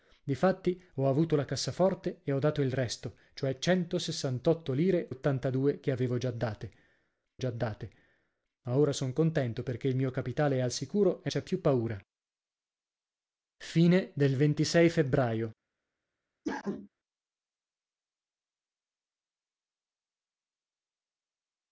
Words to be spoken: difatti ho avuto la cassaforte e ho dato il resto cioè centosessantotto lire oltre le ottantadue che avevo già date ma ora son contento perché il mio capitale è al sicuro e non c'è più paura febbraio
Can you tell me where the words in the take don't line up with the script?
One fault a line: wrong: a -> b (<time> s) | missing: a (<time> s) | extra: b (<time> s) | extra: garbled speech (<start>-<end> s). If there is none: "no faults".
missing: oltre le (5.1 s)
extra: già date (7.4 s)
missing: non (11.3 s)